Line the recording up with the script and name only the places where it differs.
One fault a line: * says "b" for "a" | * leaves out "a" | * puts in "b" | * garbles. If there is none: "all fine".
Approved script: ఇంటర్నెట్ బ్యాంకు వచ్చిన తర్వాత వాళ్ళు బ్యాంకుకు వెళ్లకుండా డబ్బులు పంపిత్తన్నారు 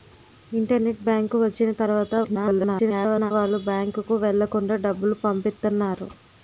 * garbles